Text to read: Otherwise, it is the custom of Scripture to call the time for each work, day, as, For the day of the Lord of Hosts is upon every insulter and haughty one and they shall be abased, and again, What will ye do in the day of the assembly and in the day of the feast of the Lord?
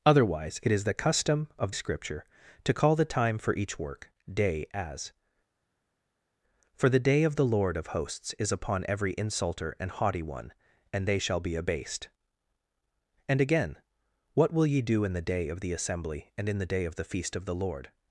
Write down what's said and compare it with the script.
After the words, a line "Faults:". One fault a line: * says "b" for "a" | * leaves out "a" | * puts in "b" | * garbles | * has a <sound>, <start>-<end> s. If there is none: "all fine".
Otherwise, it is the custom of Scripture to call the time for each work, day, as, For the day of the Lord of Hosts is upon every insulter and haughty one and they shall be abased, and again, What will ye do in the day of the assembly and in the day of the feast of the Lord?
Faults:
all fine